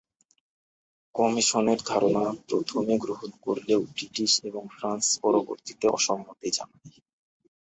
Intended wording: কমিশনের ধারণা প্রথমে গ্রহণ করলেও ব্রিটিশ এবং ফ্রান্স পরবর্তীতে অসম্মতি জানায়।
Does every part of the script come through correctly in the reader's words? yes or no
yes